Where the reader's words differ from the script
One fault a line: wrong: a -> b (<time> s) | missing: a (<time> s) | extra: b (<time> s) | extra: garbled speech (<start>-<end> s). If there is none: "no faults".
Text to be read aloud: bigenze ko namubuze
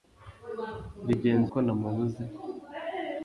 no faults